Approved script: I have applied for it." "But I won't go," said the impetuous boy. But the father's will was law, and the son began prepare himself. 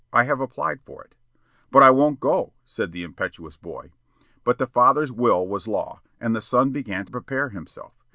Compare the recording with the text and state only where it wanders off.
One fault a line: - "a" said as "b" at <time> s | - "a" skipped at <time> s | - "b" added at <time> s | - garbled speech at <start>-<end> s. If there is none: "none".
none